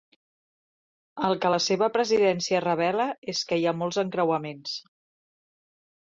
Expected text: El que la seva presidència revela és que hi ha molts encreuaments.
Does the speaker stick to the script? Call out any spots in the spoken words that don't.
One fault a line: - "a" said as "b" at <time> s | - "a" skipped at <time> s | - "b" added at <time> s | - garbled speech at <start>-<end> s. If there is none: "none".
none